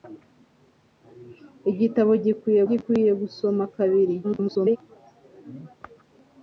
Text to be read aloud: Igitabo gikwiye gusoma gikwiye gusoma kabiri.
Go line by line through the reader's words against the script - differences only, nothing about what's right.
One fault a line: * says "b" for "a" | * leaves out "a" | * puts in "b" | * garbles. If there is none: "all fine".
* leaves out "gusoma"
* garbles